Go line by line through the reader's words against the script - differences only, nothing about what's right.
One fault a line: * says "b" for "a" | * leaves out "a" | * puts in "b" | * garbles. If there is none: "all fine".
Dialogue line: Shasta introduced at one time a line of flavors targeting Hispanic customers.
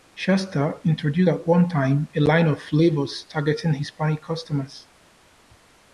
all fine